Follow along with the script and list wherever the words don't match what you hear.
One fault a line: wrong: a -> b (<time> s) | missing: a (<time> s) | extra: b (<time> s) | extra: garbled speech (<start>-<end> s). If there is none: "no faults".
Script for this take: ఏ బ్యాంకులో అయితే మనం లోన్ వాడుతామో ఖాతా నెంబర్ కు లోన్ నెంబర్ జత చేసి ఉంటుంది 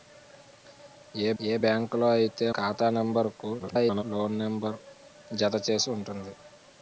extra: ఏ (1.4 s)
missing: మనం లోన్ వాడుతామో (2.5 s)
extra: garbled speech (3.6-4.0 s)